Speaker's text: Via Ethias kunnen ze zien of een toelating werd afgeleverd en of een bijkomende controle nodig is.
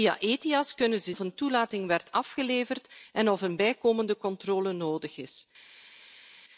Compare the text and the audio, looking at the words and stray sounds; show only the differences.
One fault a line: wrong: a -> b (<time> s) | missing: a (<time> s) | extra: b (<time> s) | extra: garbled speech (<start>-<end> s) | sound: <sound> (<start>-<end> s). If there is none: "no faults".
missing: zien (1.1 s)